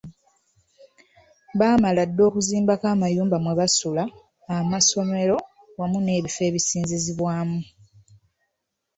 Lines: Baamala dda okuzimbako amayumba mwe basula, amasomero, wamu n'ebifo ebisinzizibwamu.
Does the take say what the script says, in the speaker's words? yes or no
yes